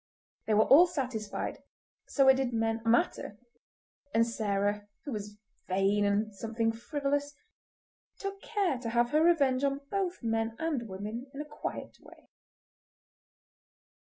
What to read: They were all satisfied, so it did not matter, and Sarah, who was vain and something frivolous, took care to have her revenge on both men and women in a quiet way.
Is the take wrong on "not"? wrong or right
wrong